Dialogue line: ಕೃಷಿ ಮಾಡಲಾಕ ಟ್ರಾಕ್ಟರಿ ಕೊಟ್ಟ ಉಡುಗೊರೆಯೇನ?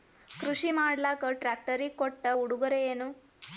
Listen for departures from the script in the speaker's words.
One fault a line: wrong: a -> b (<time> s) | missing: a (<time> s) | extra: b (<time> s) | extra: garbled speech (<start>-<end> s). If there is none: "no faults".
no faults